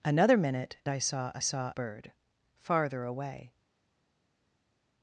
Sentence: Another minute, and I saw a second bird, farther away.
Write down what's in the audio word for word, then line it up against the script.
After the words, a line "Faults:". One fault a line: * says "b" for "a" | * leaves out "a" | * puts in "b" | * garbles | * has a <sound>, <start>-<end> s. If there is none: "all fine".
Another minute, I saw a saw bird, farther away.
Faults:
* leaves out "and"
* says "saw" for "second"